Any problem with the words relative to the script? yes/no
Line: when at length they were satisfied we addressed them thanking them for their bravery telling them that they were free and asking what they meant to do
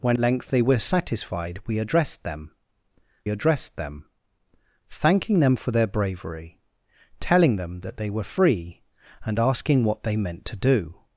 yes